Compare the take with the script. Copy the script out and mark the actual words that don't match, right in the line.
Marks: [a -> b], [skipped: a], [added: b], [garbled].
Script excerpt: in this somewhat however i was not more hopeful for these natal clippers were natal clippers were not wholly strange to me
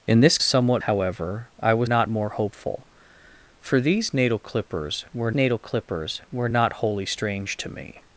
in this somewhat however i was not more hopeful for these natal clippers were natal clippers were not wholly strange to me